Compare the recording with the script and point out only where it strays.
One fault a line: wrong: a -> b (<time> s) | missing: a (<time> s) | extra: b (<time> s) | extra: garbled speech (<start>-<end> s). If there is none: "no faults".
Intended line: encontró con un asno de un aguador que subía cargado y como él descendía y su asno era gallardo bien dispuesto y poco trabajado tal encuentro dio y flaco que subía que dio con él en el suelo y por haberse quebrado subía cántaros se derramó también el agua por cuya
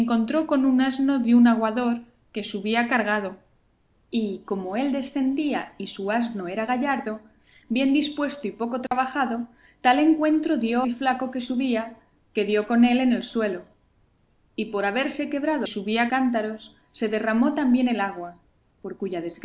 no faults